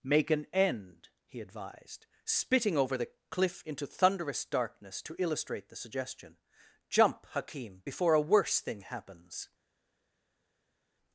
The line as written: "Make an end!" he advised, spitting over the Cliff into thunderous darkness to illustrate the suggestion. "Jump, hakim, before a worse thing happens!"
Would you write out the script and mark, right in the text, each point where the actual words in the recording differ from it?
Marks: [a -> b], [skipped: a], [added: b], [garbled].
"Make an end!" he advised, spitting over the Cliff into thunderous darkness to illustrate the suggestion. "Jump, hakim, before a worse thing happens!"